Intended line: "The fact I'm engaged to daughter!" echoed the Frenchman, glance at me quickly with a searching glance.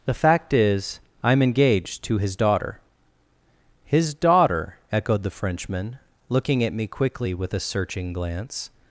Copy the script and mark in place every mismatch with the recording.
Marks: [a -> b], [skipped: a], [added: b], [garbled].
"The fact [added: is] I'm engaged to [added: his] daughter!" [added: His daughter] echoed the Frenchman, [glance -> looking] at me quickly with a searching glance.